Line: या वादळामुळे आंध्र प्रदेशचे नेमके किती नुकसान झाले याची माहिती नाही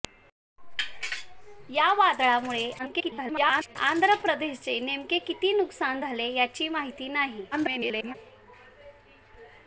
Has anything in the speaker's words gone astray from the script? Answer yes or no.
yes